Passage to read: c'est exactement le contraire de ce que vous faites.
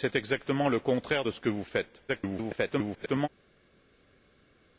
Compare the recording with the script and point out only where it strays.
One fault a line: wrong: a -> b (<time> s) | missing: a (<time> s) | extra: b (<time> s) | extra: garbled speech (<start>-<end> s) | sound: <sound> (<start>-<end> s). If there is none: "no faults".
extra: garbled speech (2.1-3.3 s)